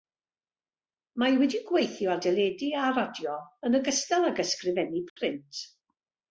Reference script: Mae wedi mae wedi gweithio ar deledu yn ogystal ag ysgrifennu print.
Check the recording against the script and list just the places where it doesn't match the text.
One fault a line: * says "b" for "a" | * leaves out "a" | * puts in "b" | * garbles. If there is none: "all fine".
* leaves out "mae wedi"
* puts in "a radio"